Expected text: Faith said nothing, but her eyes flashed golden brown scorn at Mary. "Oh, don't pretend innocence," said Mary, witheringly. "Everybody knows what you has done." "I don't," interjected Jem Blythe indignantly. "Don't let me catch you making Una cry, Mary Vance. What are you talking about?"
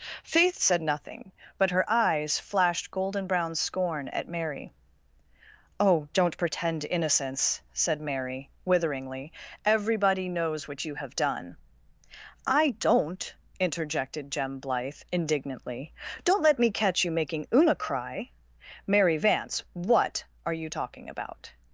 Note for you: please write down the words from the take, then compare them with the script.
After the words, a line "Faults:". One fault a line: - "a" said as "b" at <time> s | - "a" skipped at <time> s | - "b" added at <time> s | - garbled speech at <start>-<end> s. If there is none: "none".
Faith said nothing, but her eyes flashed golden brown scorn at Mary. "Oh, don't pretend innocence," said Mary, witheringly. "Everybody knows what you have done." "I don't," interjected Jem Blythe indignantly. "Don't let me catch you making Una cry, Mary Vance. What are you talking about?"
Faults:
- "has" said as "have" at 10.9 s